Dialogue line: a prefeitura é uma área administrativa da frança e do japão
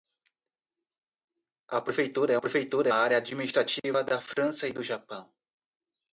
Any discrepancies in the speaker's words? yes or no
yes